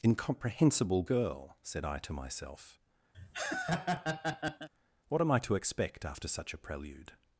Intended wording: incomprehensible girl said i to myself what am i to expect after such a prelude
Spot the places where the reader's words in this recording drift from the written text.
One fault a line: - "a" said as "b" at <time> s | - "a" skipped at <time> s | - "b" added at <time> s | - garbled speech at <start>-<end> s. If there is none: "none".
none